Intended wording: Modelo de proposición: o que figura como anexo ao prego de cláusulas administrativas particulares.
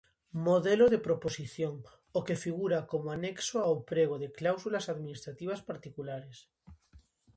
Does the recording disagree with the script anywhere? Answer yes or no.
no